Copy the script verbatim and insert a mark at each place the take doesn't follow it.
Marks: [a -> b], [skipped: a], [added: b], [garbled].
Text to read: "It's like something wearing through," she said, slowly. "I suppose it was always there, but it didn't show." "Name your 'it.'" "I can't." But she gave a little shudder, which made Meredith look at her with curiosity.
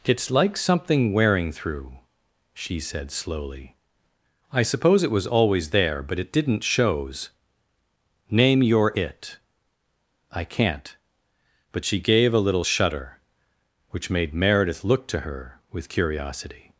"It's like something wearing through," she said, slowly. "I suppose it was always there, but it didn't [show." -> shows] "Name your 'it.'" "I can't." But she gave a little shudder, which made Meredith look [at -> to] her with curiosity.